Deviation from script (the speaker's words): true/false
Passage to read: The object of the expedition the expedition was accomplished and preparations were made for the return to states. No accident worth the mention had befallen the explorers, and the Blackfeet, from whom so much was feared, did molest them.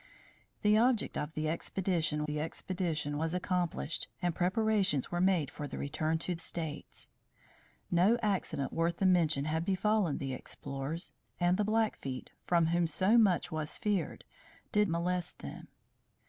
false